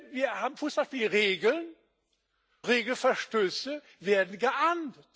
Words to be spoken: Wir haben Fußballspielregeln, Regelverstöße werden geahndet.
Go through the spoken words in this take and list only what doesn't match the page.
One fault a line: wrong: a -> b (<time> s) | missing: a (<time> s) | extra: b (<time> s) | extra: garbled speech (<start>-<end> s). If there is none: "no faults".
no faults